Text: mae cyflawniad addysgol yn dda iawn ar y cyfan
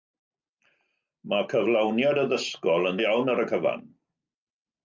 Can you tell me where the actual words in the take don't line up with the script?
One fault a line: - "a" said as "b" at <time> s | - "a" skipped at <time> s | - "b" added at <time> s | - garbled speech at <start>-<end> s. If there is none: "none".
- "dda" skipped at 3.0 s